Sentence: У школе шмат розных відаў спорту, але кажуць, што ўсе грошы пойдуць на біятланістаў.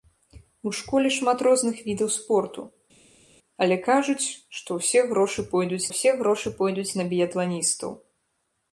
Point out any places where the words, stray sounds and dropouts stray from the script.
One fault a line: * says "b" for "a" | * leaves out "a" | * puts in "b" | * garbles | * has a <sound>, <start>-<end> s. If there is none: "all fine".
* puts in "ўсе грошы пойдуць"